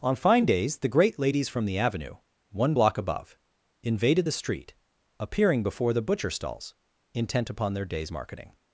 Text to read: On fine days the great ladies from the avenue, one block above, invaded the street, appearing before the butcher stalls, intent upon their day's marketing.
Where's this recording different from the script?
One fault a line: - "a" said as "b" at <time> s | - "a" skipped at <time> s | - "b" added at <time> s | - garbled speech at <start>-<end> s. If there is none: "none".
none